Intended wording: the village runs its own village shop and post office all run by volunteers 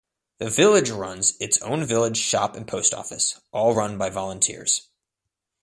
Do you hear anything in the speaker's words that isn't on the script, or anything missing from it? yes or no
no